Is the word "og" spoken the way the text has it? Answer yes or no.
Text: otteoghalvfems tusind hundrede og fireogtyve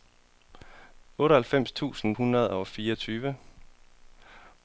yes